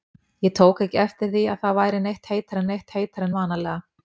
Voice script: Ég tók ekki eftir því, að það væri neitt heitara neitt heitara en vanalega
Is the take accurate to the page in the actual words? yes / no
yes